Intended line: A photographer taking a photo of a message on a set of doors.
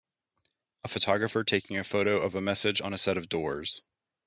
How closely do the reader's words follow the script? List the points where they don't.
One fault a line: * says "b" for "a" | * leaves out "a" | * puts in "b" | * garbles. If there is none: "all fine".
all fine